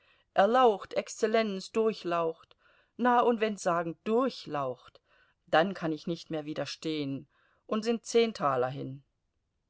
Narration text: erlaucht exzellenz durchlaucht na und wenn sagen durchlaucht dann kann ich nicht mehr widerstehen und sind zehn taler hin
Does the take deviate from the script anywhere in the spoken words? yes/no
no